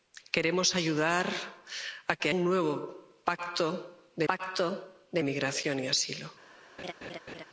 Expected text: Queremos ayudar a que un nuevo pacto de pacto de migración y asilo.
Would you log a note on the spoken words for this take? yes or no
no